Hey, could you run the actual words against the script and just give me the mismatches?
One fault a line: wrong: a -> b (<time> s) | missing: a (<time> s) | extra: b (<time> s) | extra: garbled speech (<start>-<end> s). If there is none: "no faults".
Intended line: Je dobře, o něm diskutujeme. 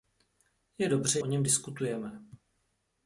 no faults